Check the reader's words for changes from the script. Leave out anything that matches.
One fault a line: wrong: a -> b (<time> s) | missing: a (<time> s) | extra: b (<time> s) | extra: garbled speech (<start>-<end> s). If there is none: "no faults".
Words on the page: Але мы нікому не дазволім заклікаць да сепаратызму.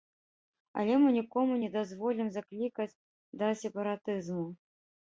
no faults